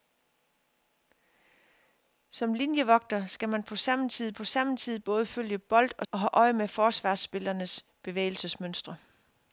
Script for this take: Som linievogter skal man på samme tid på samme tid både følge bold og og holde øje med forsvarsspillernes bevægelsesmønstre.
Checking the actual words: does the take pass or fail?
pass